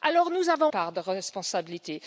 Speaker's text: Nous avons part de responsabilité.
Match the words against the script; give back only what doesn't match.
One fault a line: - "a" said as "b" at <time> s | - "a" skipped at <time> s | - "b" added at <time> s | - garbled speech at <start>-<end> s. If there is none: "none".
none